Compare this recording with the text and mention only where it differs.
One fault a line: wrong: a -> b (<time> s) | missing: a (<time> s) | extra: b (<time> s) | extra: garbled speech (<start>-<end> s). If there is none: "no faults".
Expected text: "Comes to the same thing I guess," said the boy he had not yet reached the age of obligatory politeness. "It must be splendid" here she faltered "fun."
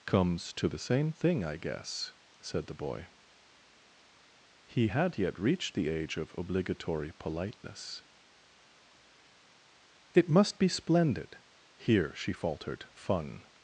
missing: not (5.2 s)